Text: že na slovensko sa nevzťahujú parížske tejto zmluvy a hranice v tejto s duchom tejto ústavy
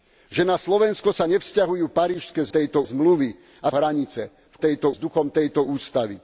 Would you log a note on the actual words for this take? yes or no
no